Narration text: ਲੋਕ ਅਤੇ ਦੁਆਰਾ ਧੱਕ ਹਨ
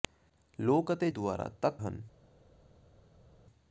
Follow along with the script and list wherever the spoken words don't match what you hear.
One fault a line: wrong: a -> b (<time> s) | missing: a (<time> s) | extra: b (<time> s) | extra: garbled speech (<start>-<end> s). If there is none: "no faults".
no faults